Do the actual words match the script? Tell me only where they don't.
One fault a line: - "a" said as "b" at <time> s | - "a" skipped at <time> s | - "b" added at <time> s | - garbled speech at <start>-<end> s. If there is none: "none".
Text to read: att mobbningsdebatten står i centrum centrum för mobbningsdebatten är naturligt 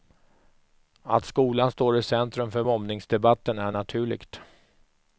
- "mobbningsdebatten" said as "skolan" at 1.2 s
- "centrum" skipped at 2.5 s